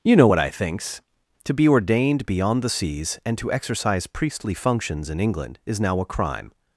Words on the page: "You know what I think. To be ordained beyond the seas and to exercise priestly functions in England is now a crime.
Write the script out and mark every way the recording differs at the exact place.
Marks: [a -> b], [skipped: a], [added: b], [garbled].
"You know what I [think. -> thinks] To be ordained beyond the seas and to exercise priestly functions in England is now a crime.